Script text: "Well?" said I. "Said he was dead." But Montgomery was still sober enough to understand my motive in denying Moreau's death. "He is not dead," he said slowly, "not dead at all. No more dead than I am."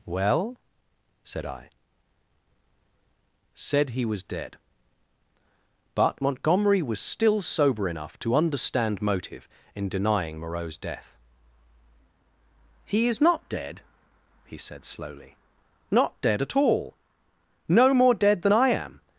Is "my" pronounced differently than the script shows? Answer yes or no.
yes